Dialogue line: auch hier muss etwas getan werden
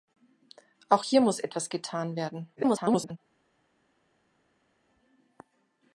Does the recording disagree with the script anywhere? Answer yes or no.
yes